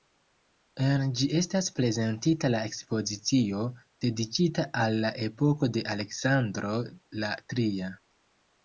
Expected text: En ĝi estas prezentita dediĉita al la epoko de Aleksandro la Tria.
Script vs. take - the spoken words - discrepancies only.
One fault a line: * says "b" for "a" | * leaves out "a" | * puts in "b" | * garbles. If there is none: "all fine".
* puts in "la ekspozicio"